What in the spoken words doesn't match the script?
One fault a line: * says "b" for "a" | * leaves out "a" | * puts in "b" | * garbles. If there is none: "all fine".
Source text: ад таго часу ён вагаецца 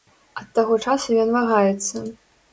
all fine